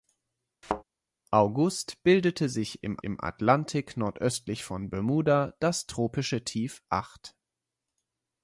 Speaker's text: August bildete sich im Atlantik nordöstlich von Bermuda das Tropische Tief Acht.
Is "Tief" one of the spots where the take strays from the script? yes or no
no